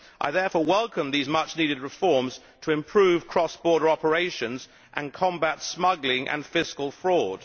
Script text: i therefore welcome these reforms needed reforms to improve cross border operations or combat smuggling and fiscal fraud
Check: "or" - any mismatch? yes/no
yes